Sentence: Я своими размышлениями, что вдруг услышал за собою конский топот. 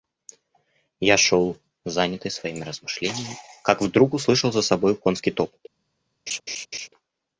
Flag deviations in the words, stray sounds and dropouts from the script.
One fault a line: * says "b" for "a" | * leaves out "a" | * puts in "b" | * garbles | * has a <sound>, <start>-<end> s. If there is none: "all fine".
* puts in "шел занятый"
* says "как" for "что"
* has a laugh, 6.3-6.9 s